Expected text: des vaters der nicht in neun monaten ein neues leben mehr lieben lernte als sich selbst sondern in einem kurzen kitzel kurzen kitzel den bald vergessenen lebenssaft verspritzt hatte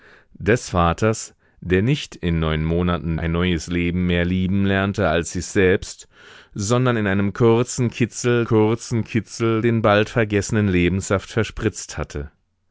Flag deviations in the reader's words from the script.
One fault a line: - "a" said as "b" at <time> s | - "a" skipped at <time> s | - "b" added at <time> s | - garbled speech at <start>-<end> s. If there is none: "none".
none